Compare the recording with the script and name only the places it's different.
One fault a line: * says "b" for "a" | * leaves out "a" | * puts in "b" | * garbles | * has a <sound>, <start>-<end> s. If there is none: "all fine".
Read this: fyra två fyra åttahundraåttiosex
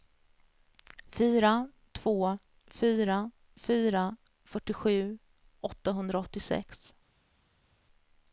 * puts in "fyra fyrtiosju"